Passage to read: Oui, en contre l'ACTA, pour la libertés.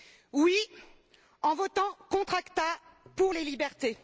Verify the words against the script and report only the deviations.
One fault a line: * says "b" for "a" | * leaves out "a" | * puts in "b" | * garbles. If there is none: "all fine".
* puts in "votant"
* says "les" for "la"